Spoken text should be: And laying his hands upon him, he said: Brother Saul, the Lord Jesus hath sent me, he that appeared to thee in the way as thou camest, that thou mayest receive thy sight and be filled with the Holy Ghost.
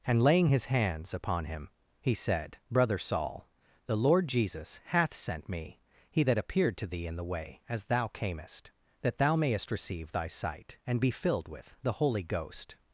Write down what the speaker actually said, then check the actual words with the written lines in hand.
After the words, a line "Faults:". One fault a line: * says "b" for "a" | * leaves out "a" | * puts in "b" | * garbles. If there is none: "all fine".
And laying his hands upon him, he said: Brother Saul, the Lord Jesus hath sent me, he that appeared to thee in the way as thou camest, that thou mayest receive thy sight and be filled with the Holy Ghost.
Faults:
all fine